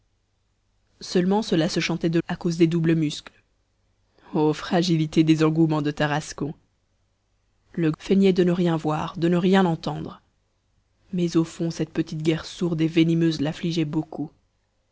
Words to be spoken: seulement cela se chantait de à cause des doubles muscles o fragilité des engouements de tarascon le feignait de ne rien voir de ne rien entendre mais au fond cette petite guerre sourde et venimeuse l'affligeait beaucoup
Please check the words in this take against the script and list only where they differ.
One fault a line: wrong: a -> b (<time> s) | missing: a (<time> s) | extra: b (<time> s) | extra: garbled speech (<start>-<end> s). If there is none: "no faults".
no faults